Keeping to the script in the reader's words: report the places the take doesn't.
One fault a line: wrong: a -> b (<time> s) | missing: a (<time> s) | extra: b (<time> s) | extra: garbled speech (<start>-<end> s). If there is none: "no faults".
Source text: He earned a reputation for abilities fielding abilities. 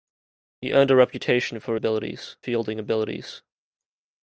no faults